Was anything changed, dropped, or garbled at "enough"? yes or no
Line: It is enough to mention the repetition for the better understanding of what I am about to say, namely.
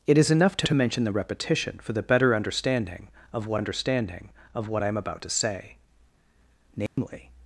no